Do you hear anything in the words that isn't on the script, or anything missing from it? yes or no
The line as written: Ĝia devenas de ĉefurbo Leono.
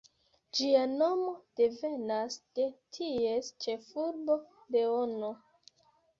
yes